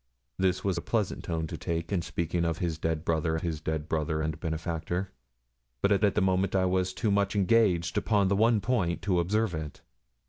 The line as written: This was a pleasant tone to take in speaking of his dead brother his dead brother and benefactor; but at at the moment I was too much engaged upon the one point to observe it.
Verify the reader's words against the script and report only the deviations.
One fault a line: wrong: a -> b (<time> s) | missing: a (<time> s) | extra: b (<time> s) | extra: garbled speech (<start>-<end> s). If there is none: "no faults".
no faults